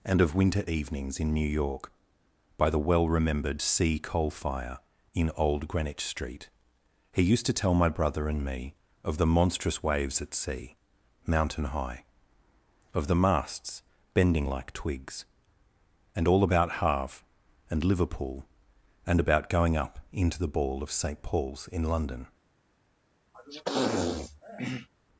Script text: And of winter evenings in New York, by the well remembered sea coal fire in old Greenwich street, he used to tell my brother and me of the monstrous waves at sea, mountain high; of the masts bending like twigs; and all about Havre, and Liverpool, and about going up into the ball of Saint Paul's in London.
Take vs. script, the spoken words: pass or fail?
pass